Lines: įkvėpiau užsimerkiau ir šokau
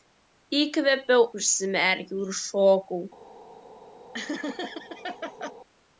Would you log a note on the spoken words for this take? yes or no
no